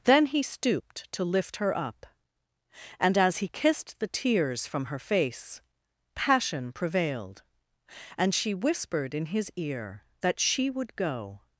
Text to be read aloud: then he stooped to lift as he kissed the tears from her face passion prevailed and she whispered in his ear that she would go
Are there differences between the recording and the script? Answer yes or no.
yes